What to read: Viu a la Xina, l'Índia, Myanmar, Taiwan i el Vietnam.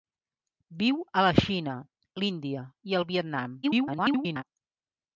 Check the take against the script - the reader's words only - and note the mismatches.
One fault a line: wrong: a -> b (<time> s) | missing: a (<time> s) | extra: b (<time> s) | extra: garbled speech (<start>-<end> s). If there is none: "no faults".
missing: Myanmar Taiwan (2.6 s)
extra: garbled speech (3.6-4.4 s)